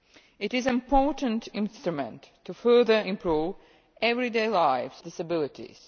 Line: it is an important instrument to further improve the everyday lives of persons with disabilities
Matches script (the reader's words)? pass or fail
fail